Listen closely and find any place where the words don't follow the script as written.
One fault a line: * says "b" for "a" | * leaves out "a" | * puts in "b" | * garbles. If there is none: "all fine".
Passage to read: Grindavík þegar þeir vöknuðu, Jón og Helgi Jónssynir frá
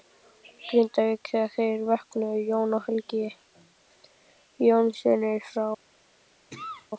all fine